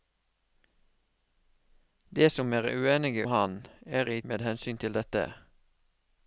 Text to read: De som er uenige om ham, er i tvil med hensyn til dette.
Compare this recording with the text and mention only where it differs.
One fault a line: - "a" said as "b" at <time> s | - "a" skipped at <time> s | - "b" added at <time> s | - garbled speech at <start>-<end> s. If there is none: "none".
- "om" skipped at 3.3 s
- "tvil" skipped at 4.2 s